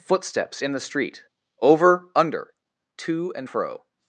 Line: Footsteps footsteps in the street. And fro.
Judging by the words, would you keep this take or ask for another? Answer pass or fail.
fail